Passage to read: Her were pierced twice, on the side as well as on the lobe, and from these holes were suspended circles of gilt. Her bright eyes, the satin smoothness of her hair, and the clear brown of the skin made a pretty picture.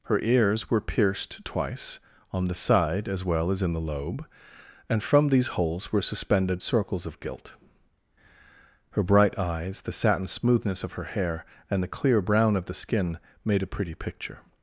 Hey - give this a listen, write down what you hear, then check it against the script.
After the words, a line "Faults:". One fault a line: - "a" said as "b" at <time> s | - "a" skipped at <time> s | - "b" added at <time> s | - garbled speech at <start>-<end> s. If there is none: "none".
Her ears were pierced twice, on the side as well as in the lobe, and from these holes were suspended circles of gilt. Her bright eyes, the satin smoothness of her hair, and the clear brown of the skin made a pretty picture.
Faults:
- "ears" added at 0.2 s
- "on" said as "in" at 3.6 s